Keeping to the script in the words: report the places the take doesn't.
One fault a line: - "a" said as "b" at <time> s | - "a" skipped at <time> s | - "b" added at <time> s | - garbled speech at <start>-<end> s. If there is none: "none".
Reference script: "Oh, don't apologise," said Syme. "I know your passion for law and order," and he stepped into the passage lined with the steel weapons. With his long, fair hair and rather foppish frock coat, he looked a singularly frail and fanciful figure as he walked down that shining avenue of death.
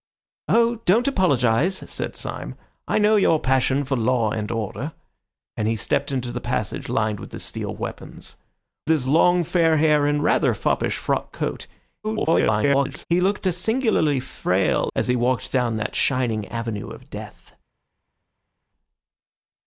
- "With" skipped at 8.3 s
- garbled speech at 12.0-13.1 s
- "and fanciful figure" skipped at 14.9 s